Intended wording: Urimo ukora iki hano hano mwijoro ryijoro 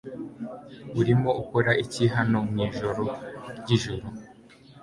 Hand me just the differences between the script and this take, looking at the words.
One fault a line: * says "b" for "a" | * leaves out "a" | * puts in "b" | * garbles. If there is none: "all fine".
* leaves out "hano"